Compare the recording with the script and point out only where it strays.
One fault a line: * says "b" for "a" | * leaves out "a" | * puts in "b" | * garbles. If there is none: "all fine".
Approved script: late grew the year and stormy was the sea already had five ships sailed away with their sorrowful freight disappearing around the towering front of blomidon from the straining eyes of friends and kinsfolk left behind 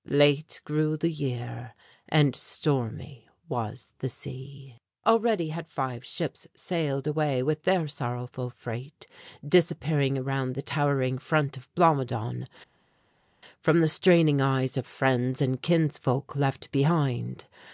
all fine